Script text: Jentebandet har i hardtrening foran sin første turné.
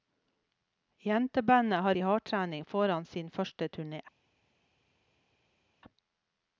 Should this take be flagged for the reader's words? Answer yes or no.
no